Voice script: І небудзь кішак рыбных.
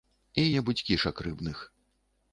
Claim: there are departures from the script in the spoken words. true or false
false